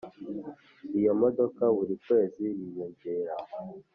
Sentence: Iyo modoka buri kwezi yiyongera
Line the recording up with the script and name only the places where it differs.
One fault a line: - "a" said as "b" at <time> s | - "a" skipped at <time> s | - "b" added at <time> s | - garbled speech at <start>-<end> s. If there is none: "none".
none